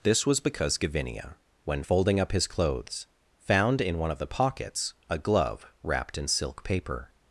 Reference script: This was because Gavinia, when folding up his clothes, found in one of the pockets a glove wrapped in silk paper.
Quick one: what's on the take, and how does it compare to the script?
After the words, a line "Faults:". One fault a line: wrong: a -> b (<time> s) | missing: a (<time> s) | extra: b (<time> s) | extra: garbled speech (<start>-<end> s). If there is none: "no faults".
This was because Gavinia, when folding up his clothes, found in one of the pockets a glove wrapped in silk paper.
Faults:
no faults